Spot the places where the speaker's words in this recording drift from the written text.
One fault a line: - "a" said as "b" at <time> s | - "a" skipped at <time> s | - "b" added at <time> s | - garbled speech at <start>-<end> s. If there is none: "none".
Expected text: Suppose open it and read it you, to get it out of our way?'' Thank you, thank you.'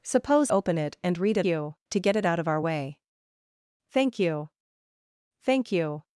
none